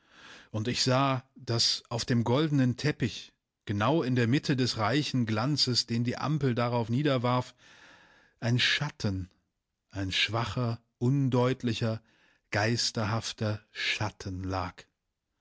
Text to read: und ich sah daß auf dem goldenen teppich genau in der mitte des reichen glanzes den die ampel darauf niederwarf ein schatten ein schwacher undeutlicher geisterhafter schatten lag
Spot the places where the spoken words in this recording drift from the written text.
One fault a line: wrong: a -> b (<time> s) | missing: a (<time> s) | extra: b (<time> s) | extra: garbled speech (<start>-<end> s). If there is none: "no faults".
no faults